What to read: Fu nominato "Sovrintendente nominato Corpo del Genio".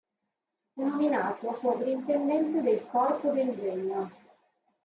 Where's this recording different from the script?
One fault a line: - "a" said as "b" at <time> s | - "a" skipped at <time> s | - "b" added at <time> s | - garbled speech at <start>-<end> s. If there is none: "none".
- "nominato" said as "del" at 2.6 s